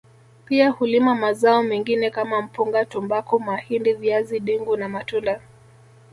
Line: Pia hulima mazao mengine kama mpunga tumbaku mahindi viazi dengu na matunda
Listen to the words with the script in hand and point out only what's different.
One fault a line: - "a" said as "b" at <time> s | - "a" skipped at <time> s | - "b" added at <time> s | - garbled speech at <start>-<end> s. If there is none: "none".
none